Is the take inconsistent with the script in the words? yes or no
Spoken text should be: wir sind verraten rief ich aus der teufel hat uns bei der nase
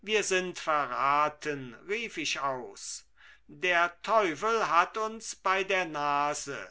no